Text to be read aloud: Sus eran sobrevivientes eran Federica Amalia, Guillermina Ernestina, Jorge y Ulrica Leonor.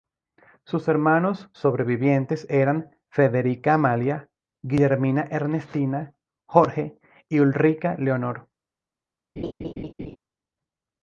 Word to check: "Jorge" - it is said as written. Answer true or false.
true